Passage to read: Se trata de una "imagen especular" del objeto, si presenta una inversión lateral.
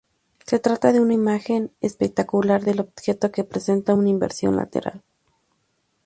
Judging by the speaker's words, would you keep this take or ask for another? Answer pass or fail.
fail